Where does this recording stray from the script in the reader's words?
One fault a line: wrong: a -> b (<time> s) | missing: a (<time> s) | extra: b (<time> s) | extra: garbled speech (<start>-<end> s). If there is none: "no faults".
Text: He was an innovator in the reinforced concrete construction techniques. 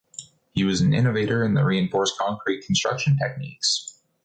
no faults